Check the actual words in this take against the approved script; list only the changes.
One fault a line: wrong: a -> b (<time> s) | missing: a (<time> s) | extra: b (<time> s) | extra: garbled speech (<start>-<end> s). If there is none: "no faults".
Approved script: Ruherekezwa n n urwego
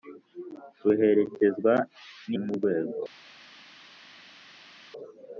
no faults